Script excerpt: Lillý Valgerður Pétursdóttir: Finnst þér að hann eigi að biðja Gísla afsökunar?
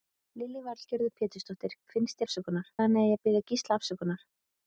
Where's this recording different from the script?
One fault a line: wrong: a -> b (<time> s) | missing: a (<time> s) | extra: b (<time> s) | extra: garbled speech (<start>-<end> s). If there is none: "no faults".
wrong: þér -> afsökunar (2.3 s)